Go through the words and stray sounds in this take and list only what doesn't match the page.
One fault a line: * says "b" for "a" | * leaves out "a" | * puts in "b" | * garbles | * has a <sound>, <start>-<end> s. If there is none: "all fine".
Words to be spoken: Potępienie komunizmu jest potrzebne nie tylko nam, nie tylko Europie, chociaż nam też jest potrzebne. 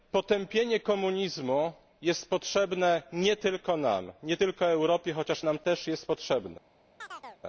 * has a chirp, 7.0-7.4 s